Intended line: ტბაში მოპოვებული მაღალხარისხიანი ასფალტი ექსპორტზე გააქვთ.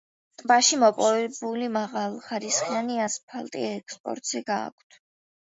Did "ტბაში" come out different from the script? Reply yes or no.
no